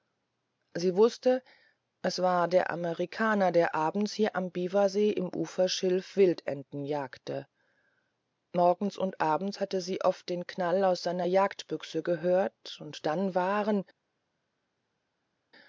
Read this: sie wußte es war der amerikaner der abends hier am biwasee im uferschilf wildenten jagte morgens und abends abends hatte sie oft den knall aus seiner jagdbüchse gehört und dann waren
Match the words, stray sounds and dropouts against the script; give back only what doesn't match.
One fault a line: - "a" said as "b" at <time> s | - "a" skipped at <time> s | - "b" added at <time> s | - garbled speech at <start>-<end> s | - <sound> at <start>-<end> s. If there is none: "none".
- "abends" skipped at 9.6 s